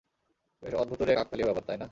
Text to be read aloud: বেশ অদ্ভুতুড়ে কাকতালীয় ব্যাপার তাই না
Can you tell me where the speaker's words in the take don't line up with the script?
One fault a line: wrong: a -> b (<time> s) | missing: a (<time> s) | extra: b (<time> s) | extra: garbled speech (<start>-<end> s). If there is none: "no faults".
no faults